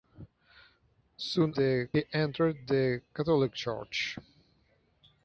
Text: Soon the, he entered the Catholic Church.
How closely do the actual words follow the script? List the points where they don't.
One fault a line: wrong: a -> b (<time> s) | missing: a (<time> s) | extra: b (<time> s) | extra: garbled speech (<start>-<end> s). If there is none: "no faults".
no faults